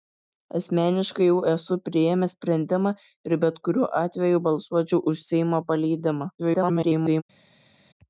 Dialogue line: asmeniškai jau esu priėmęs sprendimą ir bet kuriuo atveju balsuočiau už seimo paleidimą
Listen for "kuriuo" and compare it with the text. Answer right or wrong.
right